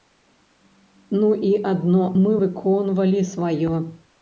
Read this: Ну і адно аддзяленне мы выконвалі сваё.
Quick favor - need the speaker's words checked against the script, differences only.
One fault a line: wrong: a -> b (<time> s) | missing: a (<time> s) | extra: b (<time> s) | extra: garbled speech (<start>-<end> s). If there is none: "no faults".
missing: аддзяленне (2.1 s)